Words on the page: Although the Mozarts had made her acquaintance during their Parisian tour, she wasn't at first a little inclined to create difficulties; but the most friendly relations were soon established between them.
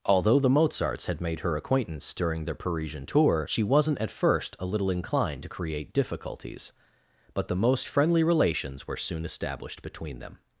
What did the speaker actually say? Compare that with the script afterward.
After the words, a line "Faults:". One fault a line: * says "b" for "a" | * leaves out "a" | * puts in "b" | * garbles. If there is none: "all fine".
Although the Mozarts had made her acquaintance during their Parisian tour, she wasn't at first a little inclined to create difficulties; but the most friendly relations were soon established between them.
Faults:
all fine